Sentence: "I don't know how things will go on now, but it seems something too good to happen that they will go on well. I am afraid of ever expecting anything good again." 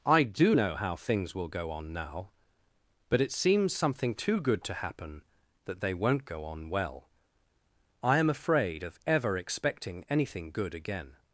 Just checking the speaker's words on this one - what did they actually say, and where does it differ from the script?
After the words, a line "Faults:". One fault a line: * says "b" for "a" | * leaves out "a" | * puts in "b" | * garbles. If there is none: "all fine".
"I do know how things will go on now, but it seems something too good to happen that they won't go on well. I am afraid of ever expecting anything good again."
Faults:
* says "do" for "don't"
* says "won't" for "will"